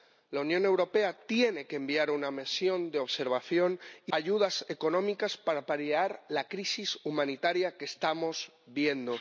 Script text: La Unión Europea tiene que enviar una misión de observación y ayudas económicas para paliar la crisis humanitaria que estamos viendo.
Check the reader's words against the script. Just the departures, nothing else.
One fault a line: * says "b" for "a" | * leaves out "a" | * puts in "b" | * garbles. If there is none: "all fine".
all fine